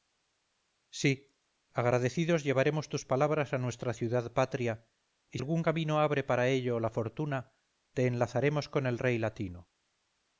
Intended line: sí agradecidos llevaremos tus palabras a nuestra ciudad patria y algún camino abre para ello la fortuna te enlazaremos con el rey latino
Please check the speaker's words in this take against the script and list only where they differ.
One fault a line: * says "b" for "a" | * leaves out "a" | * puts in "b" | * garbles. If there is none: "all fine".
all fine